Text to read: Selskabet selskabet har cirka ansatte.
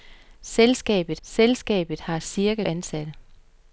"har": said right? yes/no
yes